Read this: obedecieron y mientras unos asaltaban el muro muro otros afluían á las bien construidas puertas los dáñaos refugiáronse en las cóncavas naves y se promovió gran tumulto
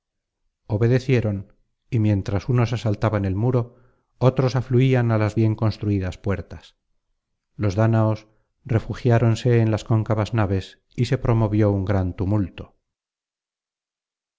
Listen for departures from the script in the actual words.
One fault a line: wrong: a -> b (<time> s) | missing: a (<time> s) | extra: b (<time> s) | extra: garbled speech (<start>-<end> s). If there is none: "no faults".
missing: muro (3.6 s)
extra: un (11.7 s)